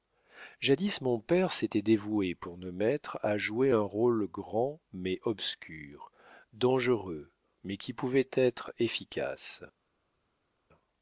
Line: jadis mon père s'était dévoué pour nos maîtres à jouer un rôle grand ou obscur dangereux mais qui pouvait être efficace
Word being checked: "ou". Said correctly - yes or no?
no